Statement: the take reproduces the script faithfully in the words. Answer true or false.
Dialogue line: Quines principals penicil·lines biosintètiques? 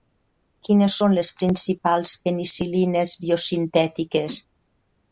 false